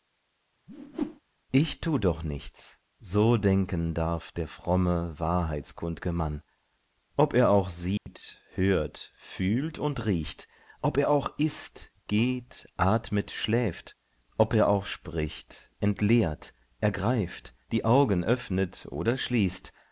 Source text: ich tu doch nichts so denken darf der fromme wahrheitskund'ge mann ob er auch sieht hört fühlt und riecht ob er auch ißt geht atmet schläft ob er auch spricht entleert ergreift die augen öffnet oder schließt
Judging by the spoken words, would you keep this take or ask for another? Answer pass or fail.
pass